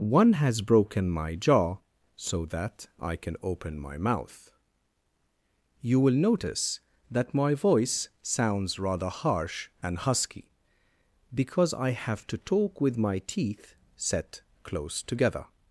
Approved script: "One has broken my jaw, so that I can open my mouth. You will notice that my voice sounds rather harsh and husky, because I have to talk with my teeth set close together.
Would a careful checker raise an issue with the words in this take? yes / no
no